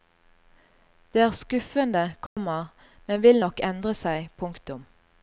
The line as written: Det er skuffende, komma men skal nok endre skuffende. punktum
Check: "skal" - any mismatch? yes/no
yes